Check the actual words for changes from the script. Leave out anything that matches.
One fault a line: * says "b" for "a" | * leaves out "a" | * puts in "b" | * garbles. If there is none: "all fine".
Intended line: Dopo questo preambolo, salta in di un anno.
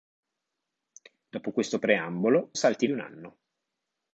all fine